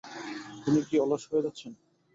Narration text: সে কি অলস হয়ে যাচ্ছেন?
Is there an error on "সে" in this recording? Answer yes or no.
yes